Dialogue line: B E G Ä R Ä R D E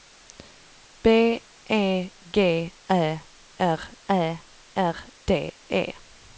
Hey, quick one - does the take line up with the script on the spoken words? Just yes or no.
yes